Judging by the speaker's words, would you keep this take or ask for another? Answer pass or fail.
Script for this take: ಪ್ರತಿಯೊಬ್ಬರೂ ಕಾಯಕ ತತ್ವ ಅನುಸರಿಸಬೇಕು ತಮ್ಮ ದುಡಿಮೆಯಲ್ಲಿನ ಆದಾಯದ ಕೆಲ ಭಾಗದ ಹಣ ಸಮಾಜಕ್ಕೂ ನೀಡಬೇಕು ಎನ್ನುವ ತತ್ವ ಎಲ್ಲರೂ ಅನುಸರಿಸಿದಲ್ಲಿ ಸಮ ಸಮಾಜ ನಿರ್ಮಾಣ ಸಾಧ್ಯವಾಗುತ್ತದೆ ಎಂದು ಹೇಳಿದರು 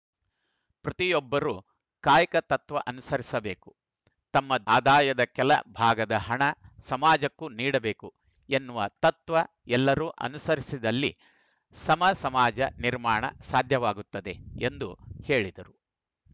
fail